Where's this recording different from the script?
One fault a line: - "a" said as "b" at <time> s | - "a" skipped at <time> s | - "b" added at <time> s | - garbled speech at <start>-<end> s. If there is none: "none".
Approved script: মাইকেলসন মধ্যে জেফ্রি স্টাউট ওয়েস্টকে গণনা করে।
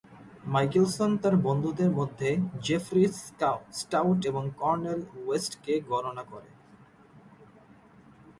- "তার বন্ধুদের" added at 1.2 s
- "এবং কর্নেল" added at 4.2 s